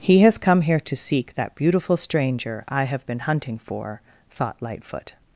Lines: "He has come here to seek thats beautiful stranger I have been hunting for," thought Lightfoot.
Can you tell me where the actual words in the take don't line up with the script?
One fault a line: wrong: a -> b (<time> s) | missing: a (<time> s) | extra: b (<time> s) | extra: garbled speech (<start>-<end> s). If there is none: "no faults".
wrong: thats -> that (1.4 s)